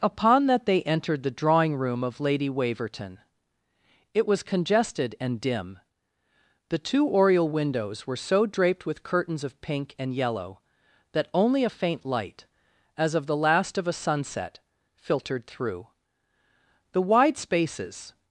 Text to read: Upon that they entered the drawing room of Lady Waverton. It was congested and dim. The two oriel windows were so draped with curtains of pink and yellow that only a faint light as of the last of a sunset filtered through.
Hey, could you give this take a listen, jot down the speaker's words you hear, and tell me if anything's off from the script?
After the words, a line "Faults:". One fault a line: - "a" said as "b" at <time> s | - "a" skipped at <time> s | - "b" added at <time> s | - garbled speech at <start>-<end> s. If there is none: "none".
Upon that they entered the drawing room of Lady Waverton. It was congested and dim. The two oriel windows were so draped with curtains of pink and yellow that only a faint light as of the last of a sunset filtered through. The wide spaces
Faults:
- "The wide spaces" added at 16.9 s